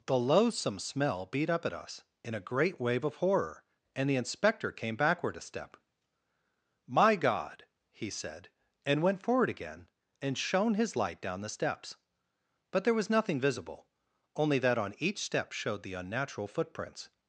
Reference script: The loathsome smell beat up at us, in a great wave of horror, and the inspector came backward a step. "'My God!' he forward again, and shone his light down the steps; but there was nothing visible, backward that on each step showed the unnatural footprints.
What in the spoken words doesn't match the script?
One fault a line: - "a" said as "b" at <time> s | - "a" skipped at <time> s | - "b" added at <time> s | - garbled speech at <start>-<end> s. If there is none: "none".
- "said and went" added at 8.1 s
- "backward" said as "only" at 14.4 s